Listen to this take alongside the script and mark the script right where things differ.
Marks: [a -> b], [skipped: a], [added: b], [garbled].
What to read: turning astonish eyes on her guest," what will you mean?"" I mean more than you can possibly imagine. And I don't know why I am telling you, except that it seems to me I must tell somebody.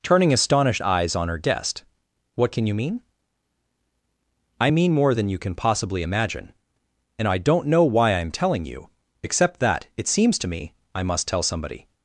turning [astonish -> astonished] eyes on her guest," what [will -> can] you mean?"" I mean more than you can possibly imagine. And I don't know why I am telling you, except that it seems to me I must tell somebody.